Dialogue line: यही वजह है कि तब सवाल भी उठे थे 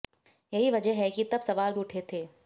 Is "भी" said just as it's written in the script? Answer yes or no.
no